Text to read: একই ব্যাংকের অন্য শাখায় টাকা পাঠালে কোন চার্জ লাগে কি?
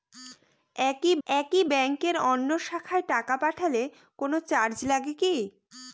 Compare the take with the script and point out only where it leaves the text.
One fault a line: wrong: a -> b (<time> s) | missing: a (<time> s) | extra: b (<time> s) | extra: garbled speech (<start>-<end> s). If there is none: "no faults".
extra: একই (1.3 s)